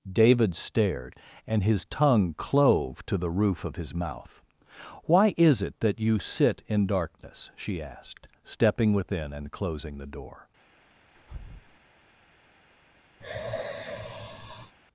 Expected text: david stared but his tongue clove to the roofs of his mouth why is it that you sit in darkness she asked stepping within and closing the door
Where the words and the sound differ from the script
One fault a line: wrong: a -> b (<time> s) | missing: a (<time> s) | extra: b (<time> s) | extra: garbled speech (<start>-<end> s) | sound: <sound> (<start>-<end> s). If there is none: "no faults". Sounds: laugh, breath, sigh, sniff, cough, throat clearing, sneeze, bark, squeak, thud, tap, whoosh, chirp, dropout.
wrong: but -> and (1.4 s)
wrong: roofs -> roof (3.3 s)
sound: breath (11.2-11.8 s)
sound: sigh (13.2-14.8 s)